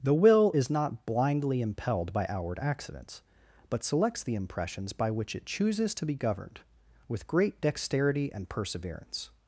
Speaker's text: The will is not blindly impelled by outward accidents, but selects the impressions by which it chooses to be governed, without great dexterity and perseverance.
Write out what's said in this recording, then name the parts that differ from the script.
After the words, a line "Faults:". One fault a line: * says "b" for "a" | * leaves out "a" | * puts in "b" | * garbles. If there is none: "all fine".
The will is not blindly impelled by outward accidents, but selects the impressions by which it chooses to be governed, with great dexterity and perseverance.
Faults:
* says "with" for "without"